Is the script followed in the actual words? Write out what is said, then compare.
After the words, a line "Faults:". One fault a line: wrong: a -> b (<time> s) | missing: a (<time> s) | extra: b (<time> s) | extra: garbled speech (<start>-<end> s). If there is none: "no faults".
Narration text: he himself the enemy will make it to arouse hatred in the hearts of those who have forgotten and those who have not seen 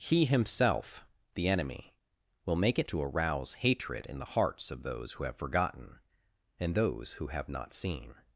he himself the enemy will make it to arouse hatred in the hearts of those who have forgotten and those who have not seen
Faults:
no faults